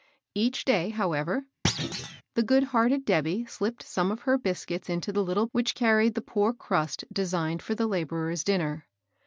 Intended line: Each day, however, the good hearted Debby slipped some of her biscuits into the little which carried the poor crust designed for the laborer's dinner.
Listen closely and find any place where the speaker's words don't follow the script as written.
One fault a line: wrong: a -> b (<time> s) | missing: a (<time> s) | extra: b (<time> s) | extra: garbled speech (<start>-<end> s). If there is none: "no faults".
no faults